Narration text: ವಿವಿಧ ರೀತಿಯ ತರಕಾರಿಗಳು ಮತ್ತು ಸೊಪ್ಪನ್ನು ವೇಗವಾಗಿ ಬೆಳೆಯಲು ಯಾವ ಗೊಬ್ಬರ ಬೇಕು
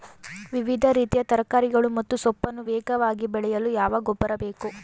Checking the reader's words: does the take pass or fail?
pass